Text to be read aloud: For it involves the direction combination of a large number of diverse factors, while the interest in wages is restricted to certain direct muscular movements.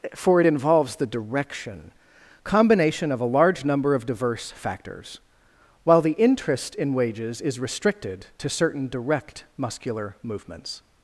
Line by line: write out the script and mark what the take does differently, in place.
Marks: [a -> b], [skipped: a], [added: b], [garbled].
For it involves the direction combination of a large number of diverse factors, while the interest in wages is restricted to certain direct muscular movements.